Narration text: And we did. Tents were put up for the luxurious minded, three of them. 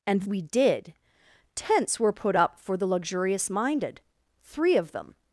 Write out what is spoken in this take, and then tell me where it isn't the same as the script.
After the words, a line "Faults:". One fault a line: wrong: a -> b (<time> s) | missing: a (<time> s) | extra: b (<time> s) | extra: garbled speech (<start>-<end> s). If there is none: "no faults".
And we did. Tents were put up for the luxurious minded, three of them.
Faults:
no faults